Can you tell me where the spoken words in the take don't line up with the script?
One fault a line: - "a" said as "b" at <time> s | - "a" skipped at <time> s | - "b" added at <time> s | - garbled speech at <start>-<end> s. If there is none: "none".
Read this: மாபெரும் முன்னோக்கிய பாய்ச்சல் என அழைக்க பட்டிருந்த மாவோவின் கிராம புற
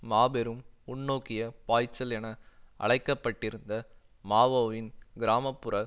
none